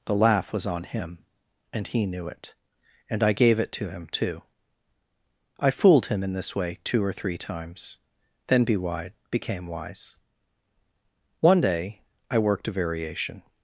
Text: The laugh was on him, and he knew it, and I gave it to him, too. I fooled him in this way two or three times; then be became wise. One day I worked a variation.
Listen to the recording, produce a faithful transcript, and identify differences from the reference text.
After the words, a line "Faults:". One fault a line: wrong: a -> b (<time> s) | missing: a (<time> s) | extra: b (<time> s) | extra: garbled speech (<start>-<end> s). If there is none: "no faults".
The laugh was on him, and he knew it, and I gave it to him, too. I fooled him in this way two or three times; then be wide became wise. One day I worked a variation.
Faults:
extra: wide (8.8 s)